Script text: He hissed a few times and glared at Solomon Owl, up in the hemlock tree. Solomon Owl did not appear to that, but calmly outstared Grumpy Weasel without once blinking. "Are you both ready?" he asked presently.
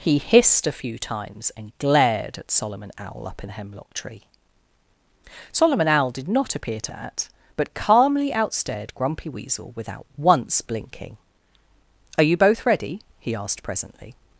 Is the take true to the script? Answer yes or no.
yes